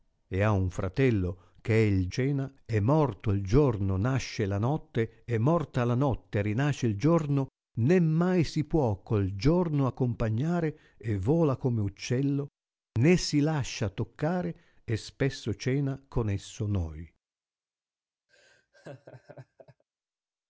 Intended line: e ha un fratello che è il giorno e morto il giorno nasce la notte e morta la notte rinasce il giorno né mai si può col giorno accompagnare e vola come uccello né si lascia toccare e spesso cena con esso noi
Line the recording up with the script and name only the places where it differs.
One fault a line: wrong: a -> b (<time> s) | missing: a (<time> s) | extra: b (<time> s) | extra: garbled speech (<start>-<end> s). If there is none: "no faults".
wrong: giorno -> cena (2.1 s)